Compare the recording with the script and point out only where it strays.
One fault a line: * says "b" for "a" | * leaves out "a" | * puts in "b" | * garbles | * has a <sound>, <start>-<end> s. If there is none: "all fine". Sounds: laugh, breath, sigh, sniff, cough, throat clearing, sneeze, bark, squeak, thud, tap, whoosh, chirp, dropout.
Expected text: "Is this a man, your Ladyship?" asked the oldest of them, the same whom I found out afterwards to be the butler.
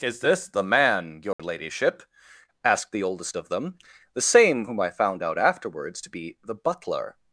* says "the" for "a"
* has a dropout, 1.3-1.4 s